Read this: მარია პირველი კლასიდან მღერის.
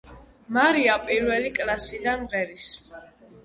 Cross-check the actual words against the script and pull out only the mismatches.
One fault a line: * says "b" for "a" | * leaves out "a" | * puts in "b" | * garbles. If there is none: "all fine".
all fine